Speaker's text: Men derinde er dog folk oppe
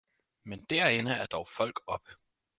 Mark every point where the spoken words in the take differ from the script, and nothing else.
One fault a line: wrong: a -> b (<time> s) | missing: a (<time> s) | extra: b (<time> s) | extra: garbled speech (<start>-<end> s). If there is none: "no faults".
no faults